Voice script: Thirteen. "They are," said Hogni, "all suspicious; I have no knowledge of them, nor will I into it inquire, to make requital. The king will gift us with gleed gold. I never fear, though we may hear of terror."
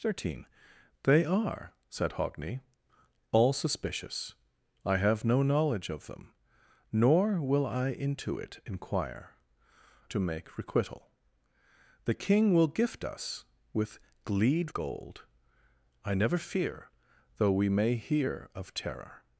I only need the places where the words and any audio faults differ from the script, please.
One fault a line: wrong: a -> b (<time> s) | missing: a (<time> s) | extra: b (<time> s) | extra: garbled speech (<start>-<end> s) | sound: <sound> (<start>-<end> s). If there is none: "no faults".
no faults